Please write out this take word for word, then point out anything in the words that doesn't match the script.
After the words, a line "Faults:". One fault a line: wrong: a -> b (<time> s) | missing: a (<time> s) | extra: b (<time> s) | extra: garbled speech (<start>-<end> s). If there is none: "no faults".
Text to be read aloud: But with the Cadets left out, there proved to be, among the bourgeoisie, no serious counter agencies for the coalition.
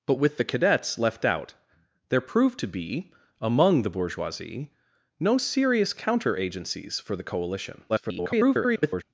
But with the Cadets left out, there proved to be, among the bourgeoisie, no serious counter agencies for the coalition. [garbled]
Faults:
extra: garbled speech (7.9-9.0 s)